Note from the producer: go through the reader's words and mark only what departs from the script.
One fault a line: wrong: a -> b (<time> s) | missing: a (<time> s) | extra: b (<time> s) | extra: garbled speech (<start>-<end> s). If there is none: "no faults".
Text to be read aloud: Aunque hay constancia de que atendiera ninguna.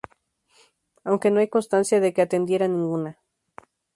extra: no (1.3 s)